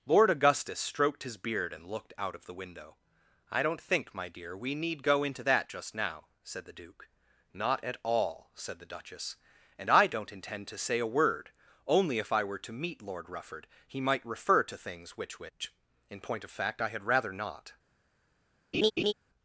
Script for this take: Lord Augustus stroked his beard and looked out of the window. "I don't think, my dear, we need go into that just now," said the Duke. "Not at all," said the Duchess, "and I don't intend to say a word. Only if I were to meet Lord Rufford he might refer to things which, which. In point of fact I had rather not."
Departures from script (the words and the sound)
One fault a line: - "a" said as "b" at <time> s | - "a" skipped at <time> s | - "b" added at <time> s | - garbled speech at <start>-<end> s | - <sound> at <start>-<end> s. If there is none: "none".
- laugh at 18.7-19.1 s